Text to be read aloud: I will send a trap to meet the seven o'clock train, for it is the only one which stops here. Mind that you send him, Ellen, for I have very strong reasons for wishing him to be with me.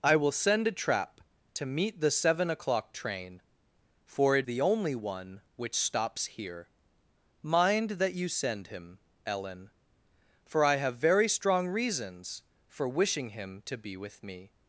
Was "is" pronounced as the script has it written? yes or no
no